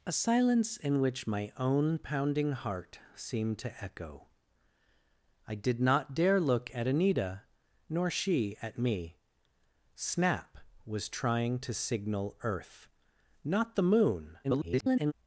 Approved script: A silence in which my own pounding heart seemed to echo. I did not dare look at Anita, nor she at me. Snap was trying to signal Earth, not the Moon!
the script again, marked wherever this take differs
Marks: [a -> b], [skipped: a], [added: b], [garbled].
A silence in which my own pounding heart seemed to echo. I did not dare look at Anita, nor she at me. Snap was trying to signal Earth, not the Moon! [garbled]